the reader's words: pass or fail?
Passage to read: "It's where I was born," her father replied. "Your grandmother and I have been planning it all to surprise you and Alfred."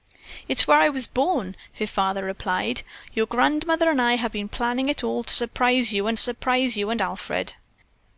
fail